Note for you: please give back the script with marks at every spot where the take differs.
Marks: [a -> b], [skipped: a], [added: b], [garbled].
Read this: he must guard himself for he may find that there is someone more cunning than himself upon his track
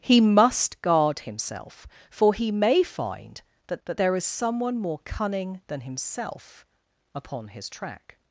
he must guard himself for he may find that [added: that] there is someone more cunning than himself upon his track